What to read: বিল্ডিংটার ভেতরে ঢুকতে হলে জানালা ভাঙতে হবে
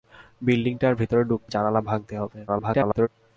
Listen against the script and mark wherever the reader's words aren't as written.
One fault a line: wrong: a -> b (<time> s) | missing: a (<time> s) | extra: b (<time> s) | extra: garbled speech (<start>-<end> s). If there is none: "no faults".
missing: হলে (1.5 s)
extra: garbled speech (2.5-3.1 s)